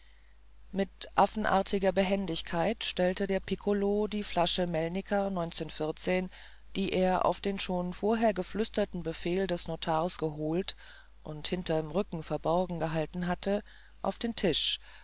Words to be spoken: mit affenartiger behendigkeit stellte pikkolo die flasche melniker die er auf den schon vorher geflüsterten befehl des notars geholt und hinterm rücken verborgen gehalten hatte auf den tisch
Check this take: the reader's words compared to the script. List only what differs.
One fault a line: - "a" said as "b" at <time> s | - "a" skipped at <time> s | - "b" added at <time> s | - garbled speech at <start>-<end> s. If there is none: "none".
- "der" added at 3.2 s